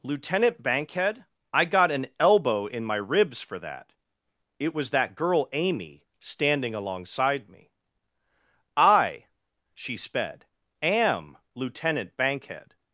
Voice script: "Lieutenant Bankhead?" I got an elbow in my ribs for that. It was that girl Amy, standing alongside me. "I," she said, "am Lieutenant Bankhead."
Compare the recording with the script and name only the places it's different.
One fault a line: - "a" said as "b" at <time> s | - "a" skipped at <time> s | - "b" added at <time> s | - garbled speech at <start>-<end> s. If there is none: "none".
- "said" said as "sped" at 10.0 s